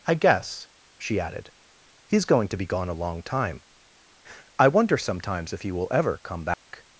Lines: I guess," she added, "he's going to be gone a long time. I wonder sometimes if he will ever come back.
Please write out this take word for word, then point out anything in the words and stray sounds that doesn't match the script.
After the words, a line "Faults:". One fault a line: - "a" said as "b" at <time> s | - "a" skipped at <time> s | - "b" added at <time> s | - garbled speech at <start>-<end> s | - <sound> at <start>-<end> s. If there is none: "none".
I guess," she added, "he's going to be gone a long time. I wonder sometimes if he will ever come back.
Faults:
- dropout at 6.5-6.7 s